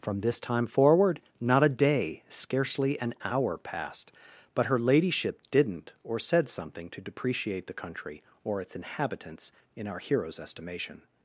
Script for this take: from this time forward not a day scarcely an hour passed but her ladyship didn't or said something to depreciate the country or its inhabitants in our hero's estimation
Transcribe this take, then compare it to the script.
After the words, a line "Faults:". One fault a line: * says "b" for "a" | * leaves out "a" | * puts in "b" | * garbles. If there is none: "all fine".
from this time forward not a day scarcely an hour passed but her ladyship didn't or said something to depreciate the country or its inhabitants in our hero's estimation
Faults:
all fine